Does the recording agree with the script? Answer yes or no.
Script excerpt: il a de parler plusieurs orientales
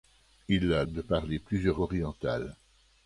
yes